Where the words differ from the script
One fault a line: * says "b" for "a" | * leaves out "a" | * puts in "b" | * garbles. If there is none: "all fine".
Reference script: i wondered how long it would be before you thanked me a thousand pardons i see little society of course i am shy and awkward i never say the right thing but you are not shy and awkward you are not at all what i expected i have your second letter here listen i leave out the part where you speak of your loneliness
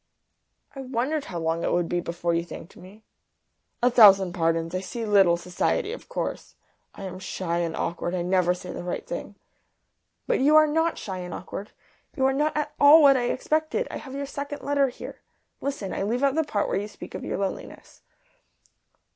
all fine